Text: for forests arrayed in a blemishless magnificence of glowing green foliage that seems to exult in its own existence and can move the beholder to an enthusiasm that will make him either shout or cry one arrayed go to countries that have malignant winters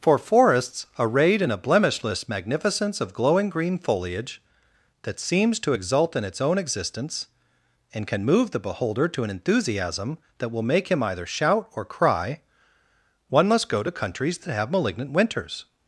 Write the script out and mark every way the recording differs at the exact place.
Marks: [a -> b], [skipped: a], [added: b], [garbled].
for forests arrayed in a blemishless magnificence of glowing green foliage that seems to exult in its own existence and can move the beholder to an enthusiasm that will make him either shout or cry one [arrayed -> must] go to countries that have malignant winters